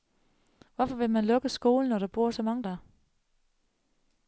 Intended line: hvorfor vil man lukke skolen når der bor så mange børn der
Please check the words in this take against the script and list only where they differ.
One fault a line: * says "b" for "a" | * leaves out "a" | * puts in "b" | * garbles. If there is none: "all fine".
* leaves out "børn"